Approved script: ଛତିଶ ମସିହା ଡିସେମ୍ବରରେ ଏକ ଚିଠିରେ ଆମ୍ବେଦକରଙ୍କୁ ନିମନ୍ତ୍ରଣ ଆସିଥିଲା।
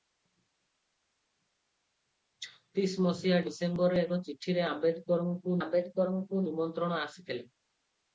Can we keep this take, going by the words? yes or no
no